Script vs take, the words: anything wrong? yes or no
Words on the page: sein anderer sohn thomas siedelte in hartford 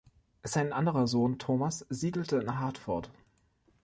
no